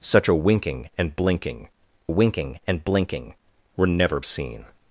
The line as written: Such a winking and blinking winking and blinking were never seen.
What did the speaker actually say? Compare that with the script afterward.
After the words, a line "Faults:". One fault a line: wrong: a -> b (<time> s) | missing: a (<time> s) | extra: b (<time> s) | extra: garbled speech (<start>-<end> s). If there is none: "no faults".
Such a winking and blinking winking and blinking were never seen.
Faults:
no faults